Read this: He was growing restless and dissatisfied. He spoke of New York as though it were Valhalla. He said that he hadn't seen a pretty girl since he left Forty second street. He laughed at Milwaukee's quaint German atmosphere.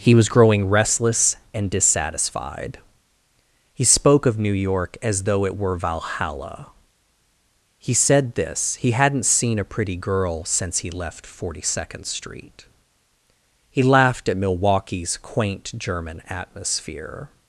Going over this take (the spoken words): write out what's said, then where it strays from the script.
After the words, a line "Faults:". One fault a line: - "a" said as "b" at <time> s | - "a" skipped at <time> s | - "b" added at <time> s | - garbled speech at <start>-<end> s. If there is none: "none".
He was growing restless and dissatisfied. He spoke of New York as though it were Valhalla. He said this he hadn't seen a pretty girl since he left Forty second street. He laughed at Milwaukee's quaint German atmosphere.
Faults:
- "that" said as "this" at 8.4 s